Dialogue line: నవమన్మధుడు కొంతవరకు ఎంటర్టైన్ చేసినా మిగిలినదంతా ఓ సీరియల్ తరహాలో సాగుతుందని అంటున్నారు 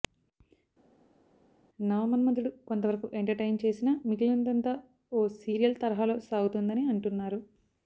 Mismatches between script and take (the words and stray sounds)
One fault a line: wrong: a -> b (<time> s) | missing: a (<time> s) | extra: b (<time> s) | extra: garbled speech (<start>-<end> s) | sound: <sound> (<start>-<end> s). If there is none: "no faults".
no faults